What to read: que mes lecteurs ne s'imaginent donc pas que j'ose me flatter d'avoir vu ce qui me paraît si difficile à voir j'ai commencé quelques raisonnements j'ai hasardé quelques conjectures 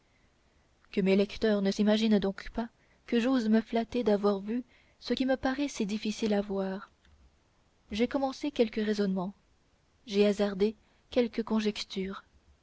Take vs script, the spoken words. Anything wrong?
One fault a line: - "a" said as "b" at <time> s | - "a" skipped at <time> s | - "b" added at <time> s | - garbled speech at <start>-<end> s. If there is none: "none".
none